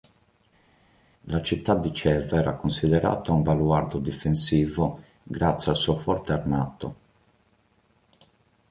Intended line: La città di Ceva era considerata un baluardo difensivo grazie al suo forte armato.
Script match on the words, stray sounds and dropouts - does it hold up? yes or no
yes